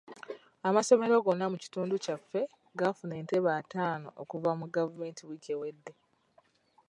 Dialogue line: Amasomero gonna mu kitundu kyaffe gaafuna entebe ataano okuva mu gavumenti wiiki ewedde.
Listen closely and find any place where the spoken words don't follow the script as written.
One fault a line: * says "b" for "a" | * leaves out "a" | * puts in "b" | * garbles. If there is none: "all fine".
all fine